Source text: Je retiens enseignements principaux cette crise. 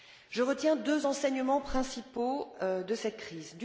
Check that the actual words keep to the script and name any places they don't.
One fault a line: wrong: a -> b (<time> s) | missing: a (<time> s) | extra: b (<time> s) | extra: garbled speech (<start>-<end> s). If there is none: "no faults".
extra: deux (0.8 s)
extra: de (2.6 s)